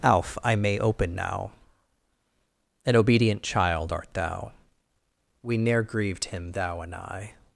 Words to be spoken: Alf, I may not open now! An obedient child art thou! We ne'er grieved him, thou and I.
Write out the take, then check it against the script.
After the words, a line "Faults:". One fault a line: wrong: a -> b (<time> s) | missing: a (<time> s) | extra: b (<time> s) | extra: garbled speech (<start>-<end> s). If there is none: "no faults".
Alf, I may open now! An obedient child art thou! We ne'er grieved him, thou and I.
Faults:
missing: not (0.8 s)